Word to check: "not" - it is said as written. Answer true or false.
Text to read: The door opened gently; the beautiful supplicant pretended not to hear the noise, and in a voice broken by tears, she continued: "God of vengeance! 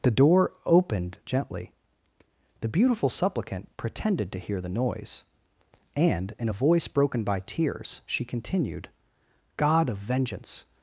false